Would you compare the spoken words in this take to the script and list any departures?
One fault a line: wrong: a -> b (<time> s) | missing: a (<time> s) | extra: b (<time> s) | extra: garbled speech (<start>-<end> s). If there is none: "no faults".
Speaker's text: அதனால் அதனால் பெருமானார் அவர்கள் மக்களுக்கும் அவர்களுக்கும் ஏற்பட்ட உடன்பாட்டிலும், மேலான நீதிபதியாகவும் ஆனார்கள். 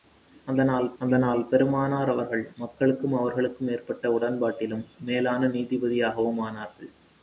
no faults